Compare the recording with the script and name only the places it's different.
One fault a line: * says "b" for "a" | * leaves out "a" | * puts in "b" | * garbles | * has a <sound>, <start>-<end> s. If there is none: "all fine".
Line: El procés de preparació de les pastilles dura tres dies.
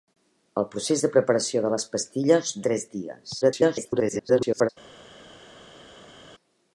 * leaves out "dura"
* garbles